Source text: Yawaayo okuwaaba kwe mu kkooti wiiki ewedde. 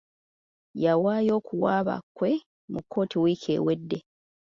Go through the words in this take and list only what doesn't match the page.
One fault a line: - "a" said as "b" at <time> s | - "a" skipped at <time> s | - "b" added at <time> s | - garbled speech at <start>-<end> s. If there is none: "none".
none